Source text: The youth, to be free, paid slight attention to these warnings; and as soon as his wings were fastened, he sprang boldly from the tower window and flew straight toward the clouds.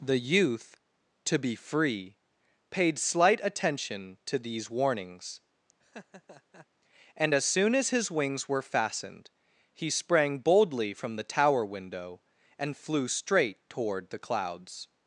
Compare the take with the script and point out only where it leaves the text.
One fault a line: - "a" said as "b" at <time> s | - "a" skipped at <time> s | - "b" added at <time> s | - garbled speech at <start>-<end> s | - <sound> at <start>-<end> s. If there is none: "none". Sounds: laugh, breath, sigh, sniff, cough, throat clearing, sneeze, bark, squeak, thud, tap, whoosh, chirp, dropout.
- laugh at 5.8-6.7 s